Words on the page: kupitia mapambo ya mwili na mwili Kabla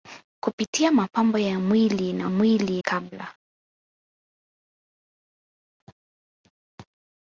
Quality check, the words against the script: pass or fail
pass